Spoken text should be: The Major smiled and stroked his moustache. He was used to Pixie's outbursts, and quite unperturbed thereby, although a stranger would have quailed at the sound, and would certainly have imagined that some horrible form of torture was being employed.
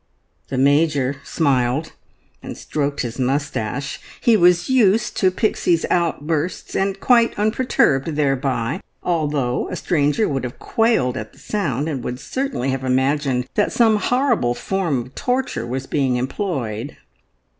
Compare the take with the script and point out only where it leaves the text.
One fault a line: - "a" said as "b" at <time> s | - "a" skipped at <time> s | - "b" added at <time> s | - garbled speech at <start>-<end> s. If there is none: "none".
none